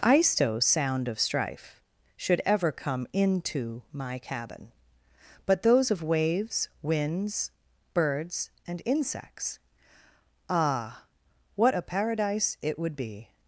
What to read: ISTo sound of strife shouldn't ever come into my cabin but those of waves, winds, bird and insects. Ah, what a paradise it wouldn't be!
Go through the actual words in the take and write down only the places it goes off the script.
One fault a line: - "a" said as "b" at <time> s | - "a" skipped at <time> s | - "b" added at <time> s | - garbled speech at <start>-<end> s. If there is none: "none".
- "shouldn't" said as "should" at 2.2 s
- "bird" said as "birds" at 7.9 s
- "wouldn't" said as "would" at 12.8 s